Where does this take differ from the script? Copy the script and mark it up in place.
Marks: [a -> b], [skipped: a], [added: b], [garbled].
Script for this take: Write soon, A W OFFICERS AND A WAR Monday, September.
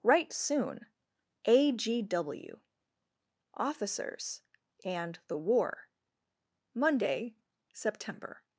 Write soon, A [added: G] W OFFICERS AND [A -> THE] WAR Monday, September.